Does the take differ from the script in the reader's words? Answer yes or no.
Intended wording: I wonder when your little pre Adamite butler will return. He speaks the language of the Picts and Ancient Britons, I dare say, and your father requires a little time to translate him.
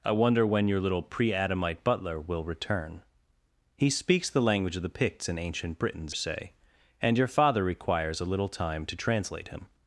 yes